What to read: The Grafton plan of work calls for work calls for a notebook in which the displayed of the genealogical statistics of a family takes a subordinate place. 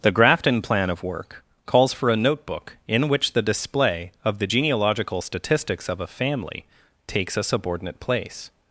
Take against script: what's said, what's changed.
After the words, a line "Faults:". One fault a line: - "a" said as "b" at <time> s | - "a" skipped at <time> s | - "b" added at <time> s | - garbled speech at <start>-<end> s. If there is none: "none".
The Grafton plan of work calls for a notebook in which the display of the genealogical statistics of a family takes a subordinate place.
Faults:
- "work calls for" skipped at 2.1 s
- "displayed" said as "display" at 3.4 s